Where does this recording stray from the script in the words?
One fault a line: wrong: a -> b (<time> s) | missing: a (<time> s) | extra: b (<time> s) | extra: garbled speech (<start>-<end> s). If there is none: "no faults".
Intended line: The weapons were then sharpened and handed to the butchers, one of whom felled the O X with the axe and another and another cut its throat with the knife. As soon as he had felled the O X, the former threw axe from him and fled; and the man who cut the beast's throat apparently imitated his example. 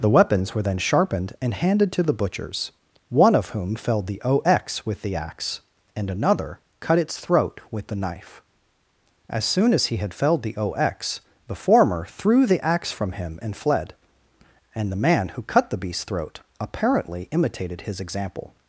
missing: and another (6.6 s)
extra: the (12.4 s)